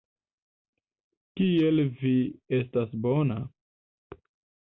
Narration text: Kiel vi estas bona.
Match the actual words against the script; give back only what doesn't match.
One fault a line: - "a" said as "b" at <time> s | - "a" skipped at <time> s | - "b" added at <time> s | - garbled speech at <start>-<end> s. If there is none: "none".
none